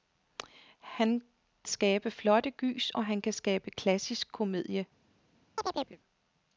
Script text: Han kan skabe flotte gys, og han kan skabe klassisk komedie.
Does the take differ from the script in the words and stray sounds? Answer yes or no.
yes